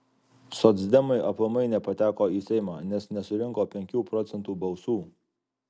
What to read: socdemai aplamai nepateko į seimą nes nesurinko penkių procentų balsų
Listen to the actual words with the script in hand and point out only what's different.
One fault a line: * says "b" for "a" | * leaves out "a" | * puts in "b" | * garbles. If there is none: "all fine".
all fine